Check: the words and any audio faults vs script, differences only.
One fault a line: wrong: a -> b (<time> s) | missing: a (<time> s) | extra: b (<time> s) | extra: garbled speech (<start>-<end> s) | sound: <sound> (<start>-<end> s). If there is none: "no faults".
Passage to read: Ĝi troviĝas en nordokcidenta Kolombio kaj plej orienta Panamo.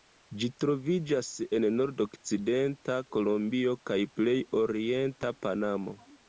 no faults